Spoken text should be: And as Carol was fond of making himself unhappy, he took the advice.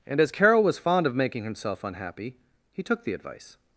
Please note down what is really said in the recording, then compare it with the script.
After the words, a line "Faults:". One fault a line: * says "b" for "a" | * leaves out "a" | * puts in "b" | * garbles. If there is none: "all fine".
And as Carol was fond of making himself unhappy, he took the advice.
Faults:
all fine